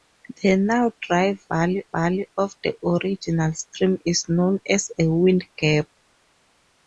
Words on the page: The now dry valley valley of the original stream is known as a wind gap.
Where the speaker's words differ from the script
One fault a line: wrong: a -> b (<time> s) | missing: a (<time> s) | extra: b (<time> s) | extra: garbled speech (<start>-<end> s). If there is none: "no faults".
no faults